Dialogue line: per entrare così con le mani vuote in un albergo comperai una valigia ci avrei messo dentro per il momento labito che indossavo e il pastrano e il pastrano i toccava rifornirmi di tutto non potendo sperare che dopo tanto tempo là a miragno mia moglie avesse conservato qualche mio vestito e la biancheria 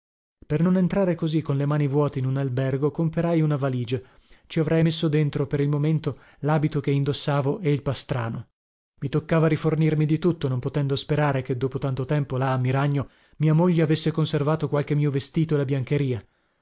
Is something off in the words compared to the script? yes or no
yes